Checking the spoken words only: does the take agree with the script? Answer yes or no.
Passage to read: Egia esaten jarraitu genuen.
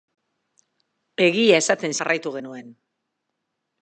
yes